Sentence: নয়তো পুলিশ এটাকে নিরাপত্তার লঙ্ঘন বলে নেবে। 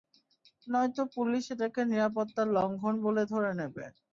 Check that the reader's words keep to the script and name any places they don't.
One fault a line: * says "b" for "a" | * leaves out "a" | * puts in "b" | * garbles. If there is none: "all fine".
* puts in "ধরে"